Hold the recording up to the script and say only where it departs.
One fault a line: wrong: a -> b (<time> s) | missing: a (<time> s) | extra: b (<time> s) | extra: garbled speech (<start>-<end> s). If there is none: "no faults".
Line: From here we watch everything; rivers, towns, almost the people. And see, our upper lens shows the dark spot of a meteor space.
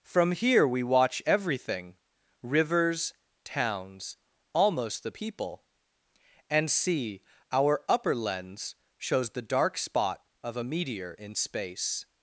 extra: in (11.2 s)